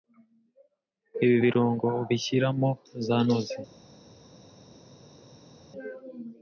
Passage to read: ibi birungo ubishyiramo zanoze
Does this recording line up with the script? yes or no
yes